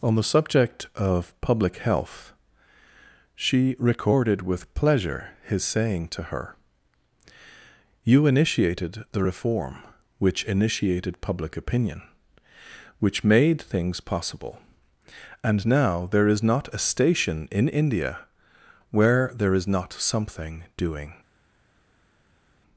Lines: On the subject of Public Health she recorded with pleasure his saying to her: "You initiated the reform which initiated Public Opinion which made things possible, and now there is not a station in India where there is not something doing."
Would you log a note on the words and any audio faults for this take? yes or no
no